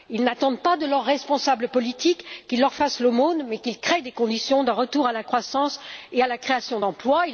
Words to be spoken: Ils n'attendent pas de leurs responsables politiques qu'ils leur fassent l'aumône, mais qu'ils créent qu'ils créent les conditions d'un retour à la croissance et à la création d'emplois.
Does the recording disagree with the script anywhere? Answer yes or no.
yes